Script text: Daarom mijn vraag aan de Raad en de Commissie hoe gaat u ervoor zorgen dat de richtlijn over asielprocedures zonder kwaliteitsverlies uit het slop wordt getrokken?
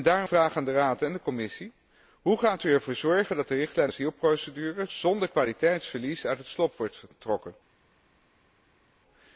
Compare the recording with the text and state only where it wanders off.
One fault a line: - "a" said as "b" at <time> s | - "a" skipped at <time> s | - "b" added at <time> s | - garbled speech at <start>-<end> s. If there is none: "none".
- "mijn" skipped at 0.3 s
- "over" skipped at 3.9 s